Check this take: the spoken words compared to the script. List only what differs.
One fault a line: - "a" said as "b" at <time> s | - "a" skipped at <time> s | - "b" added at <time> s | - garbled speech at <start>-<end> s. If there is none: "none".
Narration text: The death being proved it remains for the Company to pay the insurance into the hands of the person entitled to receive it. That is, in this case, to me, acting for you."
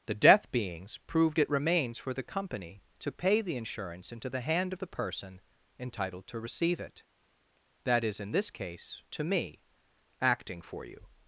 - "being" said as "beings" at 0.5 s
- "hands" said as "hand" at 4.4 s